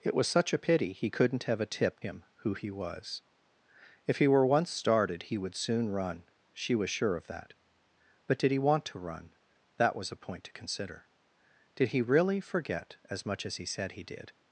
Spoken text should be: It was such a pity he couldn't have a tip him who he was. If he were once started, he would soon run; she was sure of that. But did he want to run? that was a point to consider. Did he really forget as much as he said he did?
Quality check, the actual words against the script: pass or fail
pass